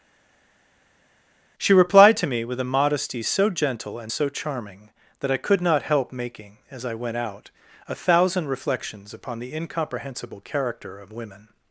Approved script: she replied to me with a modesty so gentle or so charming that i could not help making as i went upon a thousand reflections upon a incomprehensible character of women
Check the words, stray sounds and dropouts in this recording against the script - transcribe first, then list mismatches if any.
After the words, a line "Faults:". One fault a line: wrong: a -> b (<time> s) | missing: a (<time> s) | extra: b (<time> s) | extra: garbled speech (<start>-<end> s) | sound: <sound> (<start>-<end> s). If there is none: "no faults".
she replied to me with a modesty so gentle and so charming that i could not help making as i went out a thousand reflections upon the incomprehensible character of women
Faults:
wrong: or -> and (4.0 s)
wrong: upon -> out (7.2 s)
wrong: a -> the (9.4 s)